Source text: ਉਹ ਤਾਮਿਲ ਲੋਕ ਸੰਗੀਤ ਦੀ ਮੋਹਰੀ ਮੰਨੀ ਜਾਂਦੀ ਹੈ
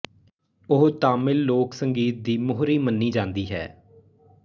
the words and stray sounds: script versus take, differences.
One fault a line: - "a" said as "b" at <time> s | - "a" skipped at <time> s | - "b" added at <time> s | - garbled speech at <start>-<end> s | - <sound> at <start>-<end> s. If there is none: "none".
none